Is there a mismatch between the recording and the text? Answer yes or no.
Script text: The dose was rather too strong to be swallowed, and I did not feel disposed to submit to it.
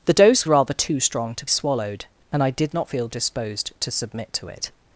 yes